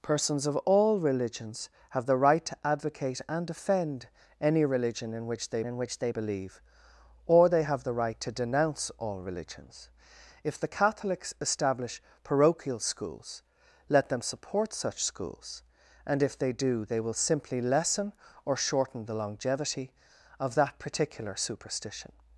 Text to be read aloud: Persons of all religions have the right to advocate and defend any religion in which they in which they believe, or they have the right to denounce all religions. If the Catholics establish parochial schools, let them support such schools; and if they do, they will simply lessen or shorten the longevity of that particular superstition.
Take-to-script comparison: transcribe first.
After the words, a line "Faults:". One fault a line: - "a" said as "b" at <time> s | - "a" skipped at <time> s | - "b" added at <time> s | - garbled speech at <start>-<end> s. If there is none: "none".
Persons of all religions have the right to advocate and defend any religion in which they in which they believe, or they have the right to denounce all religions. If the Catholics establish parochial schools, let them support such schools; and if they do, they will simply lessen or shorten the longevity of that particular superstition.
Faults:
none